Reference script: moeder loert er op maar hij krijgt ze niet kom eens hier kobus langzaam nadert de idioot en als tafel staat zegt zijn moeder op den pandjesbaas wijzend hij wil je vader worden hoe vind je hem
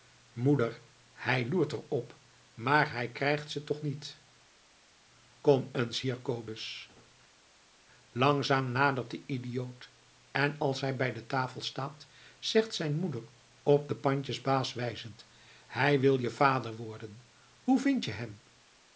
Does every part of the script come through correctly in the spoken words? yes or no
no